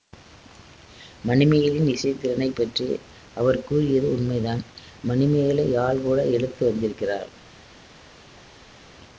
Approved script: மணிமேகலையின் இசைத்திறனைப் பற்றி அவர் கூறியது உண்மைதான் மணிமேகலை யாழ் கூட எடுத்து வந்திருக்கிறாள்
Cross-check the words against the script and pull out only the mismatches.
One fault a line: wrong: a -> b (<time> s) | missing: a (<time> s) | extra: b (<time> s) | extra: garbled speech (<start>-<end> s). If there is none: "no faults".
no faults